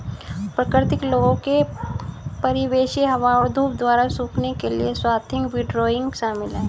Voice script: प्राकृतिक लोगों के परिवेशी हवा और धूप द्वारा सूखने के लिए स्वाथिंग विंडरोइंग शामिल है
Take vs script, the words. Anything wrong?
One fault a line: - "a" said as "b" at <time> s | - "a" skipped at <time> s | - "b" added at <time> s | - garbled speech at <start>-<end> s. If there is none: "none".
none